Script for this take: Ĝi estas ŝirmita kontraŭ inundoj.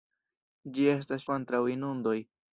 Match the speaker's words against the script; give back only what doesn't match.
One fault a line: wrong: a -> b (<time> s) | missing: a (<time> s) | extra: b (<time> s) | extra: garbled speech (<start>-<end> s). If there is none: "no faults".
missing: ŝirmita (1.3 s)